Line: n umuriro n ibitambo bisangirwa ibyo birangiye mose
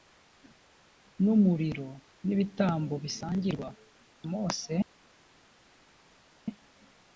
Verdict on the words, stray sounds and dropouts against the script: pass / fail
fail